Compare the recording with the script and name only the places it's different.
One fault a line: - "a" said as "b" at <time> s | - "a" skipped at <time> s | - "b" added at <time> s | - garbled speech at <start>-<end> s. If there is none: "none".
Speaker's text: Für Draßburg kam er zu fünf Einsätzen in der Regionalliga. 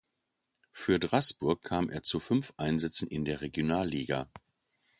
none